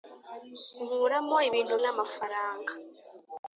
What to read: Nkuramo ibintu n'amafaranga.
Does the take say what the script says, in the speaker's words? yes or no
yes